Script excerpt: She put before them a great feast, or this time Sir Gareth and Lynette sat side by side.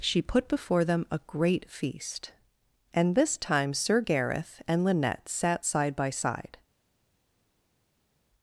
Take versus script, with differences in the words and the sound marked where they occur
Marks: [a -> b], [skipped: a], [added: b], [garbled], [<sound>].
She put before them a great feast, [or -> and] this time Sir Gareth and Lynette sat side by side.